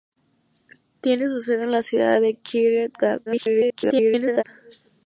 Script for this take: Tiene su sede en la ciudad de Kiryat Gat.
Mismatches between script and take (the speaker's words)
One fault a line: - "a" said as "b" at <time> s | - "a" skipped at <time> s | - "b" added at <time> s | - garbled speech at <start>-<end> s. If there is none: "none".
- garbled speech at 3.3-4.4 s